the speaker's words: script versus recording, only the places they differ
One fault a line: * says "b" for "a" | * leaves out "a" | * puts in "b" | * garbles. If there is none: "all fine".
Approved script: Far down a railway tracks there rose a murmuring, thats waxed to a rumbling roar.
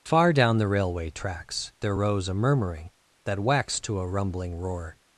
* says "the" for "a"
* says "that" for "thats"